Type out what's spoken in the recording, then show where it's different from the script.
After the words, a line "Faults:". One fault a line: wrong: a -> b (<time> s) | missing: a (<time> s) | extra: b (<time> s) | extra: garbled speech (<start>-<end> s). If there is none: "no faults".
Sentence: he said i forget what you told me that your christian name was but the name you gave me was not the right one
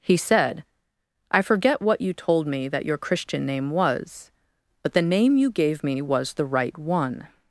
he said i forget what you told me that your christian name was but the name you gave me was the right one
Faults:
missing: not (6.3 s)